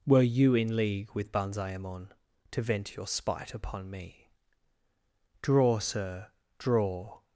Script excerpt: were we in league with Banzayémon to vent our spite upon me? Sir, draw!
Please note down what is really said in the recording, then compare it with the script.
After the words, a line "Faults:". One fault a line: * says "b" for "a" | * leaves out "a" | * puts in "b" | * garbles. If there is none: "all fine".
were you in league with Banzayémon to vent your spite upon me? Draw, sir, draw!
Faults:
* says "you" for "we"
* says "your" for "our"
* puts in "Draw"